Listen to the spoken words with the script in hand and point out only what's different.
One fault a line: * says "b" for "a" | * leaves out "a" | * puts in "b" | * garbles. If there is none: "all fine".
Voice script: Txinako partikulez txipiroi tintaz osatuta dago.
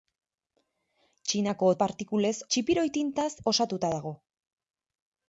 all fine